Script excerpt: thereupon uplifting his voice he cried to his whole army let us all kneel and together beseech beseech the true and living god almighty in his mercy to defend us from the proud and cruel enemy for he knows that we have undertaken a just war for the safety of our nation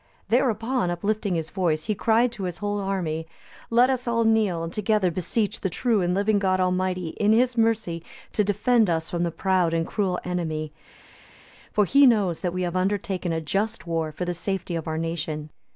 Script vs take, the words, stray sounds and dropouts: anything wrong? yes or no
yes